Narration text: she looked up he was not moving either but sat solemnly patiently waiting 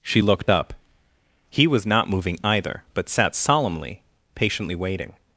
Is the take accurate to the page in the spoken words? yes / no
yes